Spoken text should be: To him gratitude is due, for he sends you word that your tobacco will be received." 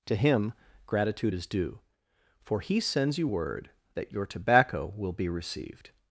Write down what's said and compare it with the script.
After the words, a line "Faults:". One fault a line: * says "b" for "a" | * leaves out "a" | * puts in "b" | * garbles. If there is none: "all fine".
To him gratitude is due, for he sends you word that your tobacco will be received."
Faults:
all fine